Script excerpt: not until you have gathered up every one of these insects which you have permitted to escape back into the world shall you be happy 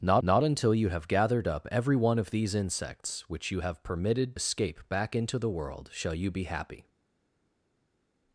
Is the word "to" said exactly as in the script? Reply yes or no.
no